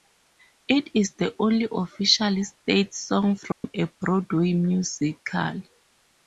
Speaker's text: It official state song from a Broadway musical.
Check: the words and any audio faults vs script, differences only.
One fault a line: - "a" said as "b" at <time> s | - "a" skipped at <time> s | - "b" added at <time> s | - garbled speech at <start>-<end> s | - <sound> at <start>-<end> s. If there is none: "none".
- "is the only" added at 0.9 s
- dropout at 3.5-3.6 s